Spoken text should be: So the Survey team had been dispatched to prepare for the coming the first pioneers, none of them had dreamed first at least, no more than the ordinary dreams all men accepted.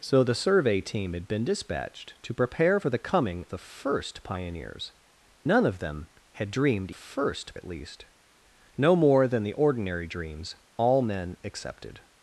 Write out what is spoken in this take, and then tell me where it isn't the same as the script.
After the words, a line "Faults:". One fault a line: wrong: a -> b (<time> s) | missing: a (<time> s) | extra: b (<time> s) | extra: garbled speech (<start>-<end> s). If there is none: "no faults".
So the Survey team had been dispatched to prepare for the coming the first pioneers, none of them had dreamed first at least, no more than the ordinary dreams all men accepted.
Faults:
no faults